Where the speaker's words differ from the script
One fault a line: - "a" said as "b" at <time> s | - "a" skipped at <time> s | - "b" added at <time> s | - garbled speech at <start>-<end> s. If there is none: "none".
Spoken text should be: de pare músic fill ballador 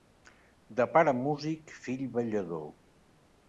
none